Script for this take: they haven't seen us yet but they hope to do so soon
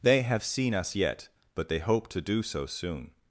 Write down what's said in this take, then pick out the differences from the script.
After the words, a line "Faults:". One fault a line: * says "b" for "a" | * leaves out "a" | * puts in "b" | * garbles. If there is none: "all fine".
they have seen us yet but they hope to do so soon
Faults:
* says "have" for "haven't"